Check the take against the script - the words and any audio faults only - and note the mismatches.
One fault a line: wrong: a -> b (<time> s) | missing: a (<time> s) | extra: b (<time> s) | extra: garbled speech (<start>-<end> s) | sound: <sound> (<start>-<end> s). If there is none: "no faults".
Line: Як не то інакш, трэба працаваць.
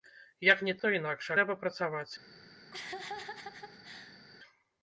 sound: laugh (2.7-4.2 s)